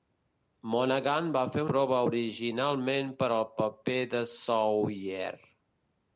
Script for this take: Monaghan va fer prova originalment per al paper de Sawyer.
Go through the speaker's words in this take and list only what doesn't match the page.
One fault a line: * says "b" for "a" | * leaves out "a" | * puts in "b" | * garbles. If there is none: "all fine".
all fine